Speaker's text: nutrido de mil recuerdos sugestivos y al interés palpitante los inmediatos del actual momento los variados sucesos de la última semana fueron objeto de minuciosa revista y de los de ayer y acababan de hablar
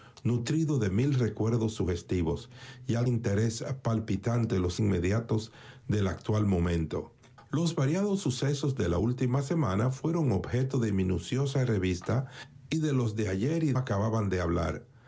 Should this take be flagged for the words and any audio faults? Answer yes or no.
no